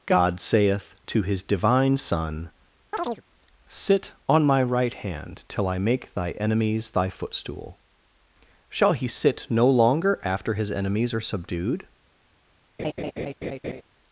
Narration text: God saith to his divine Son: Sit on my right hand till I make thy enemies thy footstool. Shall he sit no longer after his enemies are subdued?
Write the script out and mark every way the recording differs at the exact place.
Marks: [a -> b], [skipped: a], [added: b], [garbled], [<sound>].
God saith to his divine Son: [chirp] Sit on my right hand till I make thy enemies thy footstool. Shall he sit no longer after his enemies are subdued? [laugh]